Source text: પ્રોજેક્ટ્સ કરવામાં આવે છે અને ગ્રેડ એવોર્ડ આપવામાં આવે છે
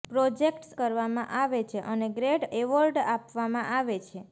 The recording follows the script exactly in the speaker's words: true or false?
true